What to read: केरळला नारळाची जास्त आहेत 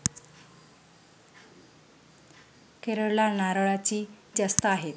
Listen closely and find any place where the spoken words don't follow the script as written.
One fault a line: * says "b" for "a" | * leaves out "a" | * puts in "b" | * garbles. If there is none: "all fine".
all fine